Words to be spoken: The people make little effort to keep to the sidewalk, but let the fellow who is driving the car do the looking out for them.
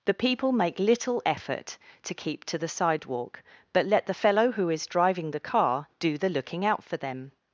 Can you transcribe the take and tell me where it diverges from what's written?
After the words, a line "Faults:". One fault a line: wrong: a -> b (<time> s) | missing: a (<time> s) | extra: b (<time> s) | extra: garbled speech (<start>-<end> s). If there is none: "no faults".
The people make little effort to keep to the sidewalk, but let the fellow who is driving the car do the looking out for them.
Faults:
no faults